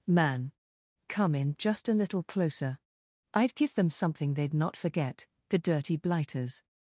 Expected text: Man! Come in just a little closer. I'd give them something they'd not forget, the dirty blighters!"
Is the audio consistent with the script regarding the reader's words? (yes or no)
yes